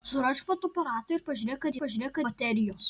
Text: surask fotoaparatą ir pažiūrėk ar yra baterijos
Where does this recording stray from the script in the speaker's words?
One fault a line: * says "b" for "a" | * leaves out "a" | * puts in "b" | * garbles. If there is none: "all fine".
* says "pažiūrėk" for "yra"